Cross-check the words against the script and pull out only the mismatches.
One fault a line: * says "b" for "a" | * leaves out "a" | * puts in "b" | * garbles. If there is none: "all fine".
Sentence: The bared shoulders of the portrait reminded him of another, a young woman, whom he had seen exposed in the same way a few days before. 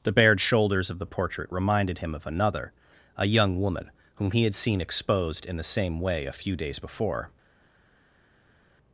all fine